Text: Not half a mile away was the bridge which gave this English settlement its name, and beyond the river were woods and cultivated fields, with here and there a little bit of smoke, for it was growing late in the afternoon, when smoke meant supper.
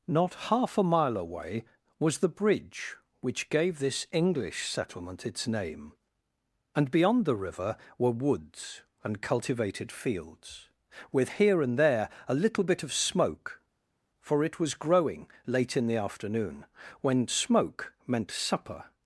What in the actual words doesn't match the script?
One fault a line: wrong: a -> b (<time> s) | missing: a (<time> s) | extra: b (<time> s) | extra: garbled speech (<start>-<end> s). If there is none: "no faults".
no faults